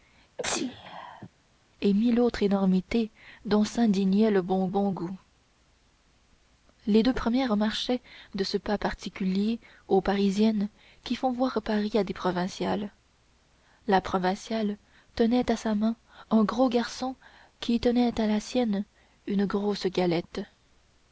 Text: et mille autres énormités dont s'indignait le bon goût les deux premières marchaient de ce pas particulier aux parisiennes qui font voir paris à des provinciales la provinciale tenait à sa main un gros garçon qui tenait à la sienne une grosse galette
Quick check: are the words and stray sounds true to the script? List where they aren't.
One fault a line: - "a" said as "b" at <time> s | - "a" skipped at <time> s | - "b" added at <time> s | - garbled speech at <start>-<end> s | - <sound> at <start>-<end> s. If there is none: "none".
- sneeze at 0.4-1.3 s
- "bon" added at 4.7 s